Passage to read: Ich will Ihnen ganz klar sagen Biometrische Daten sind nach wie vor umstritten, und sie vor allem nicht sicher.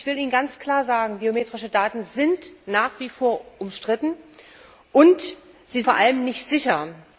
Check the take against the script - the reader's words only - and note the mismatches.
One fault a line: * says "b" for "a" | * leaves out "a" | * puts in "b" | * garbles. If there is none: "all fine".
all fine